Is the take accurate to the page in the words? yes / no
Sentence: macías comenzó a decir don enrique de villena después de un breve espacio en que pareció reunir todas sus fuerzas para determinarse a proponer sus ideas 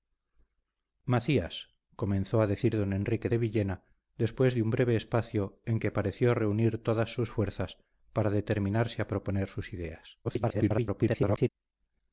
no